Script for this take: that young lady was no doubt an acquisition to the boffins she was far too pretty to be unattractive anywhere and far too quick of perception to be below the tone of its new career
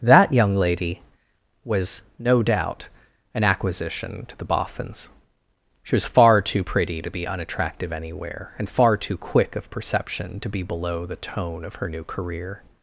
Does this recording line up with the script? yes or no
no